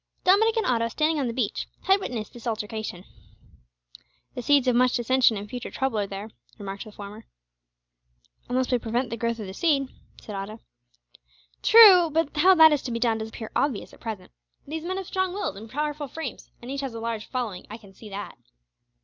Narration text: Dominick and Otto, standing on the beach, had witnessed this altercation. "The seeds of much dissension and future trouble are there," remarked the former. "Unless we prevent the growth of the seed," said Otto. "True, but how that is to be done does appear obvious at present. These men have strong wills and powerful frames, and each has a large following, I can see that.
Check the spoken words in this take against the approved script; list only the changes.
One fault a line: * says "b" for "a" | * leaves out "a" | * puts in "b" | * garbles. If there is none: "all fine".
all fine